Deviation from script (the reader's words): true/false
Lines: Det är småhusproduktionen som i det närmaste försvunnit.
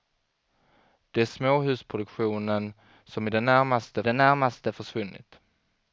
true